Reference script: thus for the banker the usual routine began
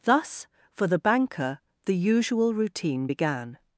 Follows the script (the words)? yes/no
yes